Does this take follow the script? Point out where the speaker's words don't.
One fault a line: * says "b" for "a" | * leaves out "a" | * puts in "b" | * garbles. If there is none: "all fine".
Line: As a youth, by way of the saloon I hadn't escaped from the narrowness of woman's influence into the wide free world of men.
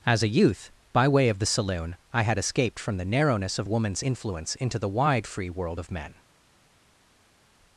* says "had" for "hadn't"